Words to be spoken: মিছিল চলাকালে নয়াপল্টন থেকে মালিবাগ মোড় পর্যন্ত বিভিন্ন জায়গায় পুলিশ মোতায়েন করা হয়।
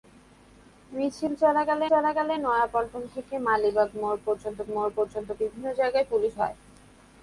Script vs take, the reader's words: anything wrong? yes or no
yes